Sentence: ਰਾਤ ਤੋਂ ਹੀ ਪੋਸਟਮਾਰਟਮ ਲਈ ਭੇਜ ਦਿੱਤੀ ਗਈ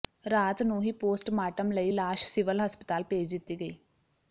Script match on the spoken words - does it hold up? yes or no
no